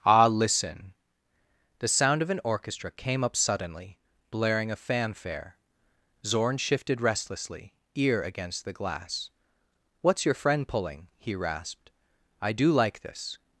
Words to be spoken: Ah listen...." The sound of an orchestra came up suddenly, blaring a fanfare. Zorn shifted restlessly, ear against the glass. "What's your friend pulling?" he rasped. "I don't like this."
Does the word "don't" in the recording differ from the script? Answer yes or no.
yes